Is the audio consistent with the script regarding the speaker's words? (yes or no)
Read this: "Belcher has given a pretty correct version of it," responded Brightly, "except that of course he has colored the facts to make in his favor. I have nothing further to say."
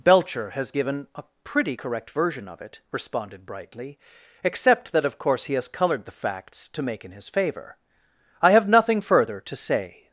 yes